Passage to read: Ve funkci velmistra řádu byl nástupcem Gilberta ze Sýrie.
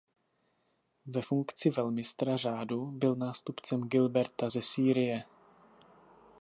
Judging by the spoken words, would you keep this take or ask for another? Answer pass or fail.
pass